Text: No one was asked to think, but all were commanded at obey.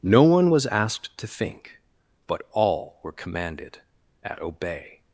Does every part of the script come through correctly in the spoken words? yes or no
yes